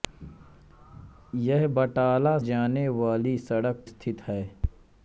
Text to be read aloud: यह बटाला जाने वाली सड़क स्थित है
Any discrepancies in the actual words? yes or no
no